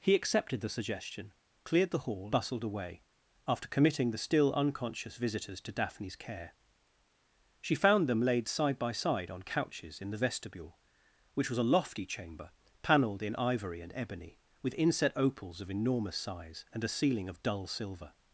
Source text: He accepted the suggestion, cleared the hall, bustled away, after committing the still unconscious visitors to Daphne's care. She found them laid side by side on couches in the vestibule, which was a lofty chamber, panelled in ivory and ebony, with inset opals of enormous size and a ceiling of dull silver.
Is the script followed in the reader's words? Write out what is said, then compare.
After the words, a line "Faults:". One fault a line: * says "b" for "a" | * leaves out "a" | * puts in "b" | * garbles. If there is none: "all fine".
He accepted the suggestion, cleared the hall, bustled away, after committing the still unconscious visitors to Daphne's care. She found them laid side by side on couches in the vestibule, which was a lofty chamber, panelled in ivory and ebony, with inset opals of enormous size and a ceiling of dull silver.
Faults:
all fine